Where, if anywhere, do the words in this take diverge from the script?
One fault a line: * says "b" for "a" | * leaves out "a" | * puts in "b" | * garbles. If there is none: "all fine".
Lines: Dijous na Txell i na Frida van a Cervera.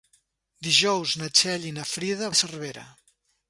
* leaves out "van"